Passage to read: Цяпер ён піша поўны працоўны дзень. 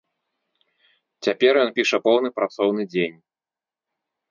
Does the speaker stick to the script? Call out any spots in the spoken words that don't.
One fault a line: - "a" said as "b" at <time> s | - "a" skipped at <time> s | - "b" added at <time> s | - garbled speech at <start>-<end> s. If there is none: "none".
none